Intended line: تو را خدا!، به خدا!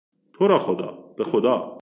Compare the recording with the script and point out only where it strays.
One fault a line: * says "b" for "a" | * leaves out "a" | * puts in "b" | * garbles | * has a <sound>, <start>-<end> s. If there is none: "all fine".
all fine